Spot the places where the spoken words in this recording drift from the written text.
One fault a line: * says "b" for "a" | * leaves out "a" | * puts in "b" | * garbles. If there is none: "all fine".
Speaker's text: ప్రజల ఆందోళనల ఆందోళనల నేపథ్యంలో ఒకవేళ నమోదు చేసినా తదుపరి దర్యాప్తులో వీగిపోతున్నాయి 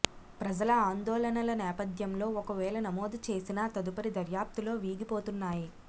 * leaves out "ఆందోళనల"